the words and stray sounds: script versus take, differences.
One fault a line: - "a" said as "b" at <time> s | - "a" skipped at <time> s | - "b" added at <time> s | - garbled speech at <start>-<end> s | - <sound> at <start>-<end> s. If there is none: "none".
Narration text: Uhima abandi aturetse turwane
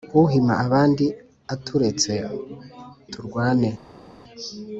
none